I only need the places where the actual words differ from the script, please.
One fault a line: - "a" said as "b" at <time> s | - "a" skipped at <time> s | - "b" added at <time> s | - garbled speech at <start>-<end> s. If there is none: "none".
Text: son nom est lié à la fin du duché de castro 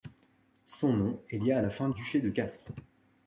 - "du" skipped at 1.9 s